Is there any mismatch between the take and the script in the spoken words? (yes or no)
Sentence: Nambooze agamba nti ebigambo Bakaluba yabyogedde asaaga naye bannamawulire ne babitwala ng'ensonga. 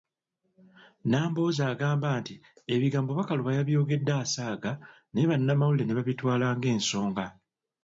no